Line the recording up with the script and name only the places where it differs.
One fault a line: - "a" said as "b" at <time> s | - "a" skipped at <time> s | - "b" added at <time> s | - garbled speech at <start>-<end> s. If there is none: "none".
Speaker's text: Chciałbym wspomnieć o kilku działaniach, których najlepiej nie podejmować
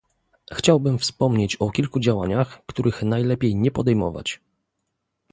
none